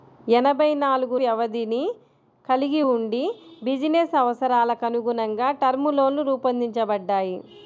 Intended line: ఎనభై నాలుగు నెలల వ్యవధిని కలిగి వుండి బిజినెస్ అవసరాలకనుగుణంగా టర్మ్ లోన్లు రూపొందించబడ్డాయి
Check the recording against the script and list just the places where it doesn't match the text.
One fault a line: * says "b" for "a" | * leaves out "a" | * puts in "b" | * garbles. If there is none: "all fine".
* leaves out "నెలల"